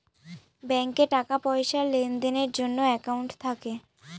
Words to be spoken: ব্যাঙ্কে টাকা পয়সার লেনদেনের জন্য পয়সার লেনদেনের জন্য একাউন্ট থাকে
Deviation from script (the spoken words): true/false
true